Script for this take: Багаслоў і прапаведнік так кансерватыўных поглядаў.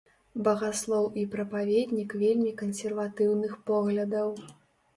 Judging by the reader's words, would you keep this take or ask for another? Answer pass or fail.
fail